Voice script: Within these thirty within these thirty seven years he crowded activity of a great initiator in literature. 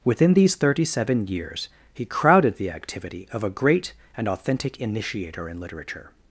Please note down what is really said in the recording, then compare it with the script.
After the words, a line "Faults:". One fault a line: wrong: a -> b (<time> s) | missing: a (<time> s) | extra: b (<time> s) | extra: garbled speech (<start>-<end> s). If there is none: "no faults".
Within these thirty seven years he crowded the activity of a great and authentic initiator in literature.
Faults:
missing: within these thirty (0.8 s)
extra: the (2.6 s)
extra: and authentic (4.2 s)